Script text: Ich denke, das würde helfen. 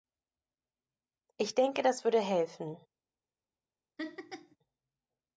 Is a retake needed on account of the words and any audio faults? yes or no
yes